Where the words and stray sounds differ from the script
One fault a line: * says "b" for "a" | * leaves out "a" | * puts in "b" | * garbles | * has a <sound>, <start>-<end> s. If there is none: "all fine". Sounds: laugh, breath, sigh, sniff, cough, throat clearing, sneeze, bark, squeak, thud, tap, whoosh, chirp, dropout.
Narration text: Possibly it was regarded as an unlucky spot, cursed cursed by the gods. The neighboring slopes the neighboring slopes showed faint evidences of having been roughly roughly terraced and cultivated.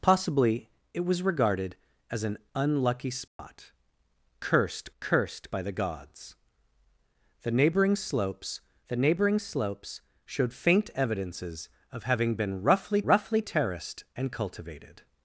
* has a dropout, 3.3-3.4 s